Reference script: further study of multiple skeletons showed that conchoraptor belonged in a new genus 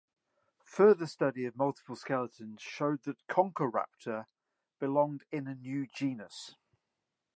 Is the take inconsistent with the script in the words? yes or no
no